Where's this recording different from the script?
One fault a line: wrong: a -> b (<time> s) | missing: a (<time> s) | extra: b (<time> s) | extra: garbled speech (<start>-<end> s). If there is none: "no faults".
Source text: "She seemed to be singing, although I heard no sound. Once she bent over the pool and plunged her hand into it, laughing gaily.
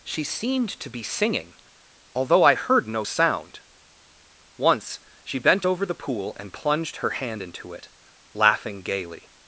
no faults